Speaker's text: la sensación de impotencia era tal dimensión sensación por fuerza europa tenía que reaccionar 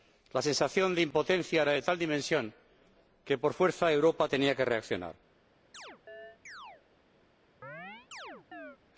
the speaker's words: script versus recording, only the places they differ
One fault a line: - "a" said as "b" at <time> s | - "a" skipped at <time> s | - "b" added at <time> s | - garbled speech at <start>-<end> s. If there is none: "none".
- "de" added at 1.7 s
- "sensación" said as "que" at 3.2 s